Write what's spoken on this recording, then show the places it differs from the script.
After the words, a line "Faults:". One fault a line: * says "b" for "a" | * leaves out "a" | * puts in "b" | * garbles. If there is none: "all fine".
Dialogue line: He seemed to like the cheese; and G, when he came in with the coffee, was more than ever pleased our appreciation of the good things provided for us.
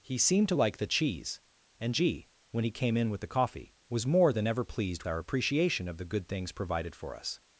He seemed to like the cheese; and G, when he came in with the coffee, was more than ever pleased our appreciation of the good things provided for us.
Faults:
all fine